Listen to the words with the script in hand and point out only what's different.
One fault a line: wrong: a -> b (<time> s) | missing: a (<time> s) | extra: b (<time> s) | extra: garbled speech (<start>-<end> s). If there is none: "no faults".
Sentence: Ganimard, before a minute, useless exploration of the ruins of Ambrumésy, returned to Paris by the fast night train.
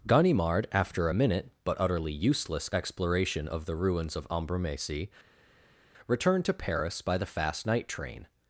wrong: before -> after (0.7 s)
extra: but utterly (1.6 s)